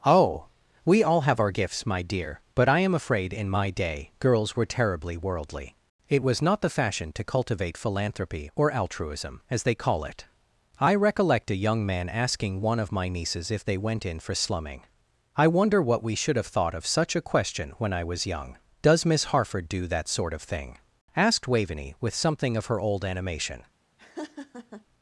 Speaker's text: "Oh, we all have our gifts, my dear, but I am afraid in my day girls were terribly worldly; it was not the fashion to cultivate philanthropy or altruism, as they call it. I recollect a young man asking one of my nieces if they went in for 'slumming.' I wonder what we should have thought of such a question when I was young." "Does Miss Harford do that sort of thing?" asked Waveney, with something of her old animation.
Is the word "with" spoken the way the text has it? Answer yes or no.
yes